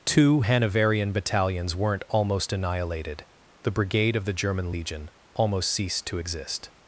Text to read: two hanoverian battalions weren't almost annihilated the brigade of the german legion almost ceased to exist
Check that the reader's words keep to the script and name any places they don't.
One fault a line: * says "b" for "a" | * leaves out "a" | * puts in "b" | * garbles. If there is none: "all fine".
all fine